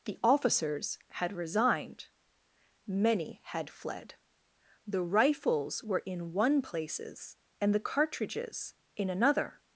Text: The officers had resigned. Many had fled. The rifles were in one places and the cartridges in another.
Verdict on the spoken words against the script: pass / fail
pass